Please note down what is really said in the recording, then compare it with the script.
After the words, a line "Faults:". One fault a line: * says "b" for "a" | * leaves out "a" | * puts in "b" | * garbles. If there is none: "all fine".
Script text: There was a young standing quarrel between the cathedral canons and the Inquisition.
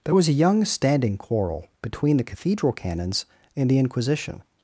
There was a young standing quarrel between the cathedral canons and the Inquisition.
Faults:
all fine